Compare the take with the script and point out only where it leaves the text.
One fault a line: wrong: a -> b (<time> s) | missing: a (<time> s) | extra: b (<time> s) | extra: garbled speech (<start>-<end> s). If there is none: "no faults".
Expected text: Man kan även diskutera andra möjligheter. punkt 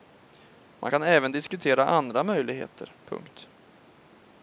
no faults